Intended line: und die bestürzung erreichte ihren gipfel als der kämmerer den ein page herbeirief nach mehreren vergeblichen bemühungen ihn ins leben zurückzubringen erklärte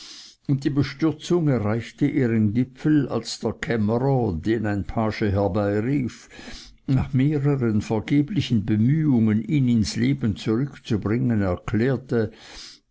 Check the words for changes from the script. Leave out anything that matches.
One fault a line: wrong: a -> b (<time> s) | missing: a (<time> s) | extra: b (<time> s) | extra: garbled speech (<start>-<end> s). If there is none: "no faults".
no faults